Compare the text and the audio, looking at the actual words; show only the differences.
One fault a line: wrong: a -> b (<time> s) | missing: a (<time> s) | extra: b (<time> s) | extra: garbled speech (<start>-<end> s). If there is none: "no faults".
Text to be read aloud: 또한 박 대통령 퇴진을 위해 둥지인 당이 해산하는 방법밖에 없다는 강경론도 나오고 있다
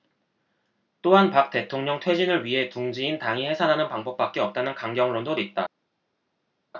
missing: 나오고 (5.3 s)